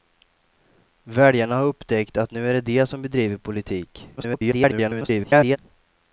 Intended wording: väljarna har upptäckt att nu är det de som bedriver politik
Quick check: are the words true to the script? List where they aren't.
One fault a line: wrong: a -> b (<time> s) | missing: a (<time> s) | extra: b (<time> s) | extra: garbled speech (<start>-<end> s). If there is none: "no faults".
extra: garbled speech (4.2-5.6 s)